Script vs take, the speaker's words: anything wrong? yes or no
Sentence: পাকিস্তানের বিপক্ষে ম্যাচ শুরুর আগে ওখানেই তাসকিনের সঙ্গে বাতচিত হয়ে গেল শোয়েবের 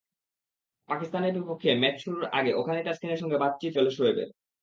yes